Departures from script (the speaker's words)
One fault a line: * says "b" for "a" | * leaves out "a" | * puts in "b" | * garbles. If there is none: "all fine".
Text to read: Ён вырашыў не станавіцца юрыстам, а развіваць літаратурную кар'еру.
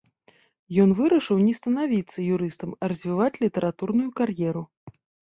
all fine